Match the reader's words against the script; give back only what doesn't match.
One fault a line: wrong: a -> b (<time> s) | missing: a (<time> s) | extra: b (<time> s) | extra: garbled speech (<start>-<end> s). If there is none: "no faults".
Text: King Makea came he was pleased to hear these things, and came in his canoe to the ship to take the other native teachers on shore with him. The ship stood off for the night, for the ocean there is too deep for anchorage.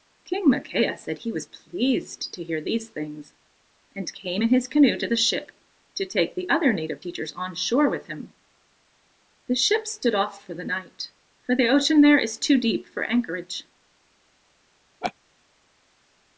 wrong: came -> said (1.0 s)